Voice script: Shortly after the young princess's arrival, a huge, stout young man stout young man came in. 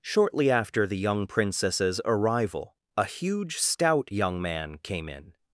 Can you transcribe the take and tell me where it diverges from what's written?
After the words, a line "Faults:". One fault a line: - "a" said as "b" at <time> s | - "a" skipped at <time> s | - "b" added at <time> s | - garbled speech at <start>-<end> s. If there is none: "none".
Shortly after the young princess's arrival, a huge, stout young man came in.
Faults:
- "stout young man" skipped at 4.8 s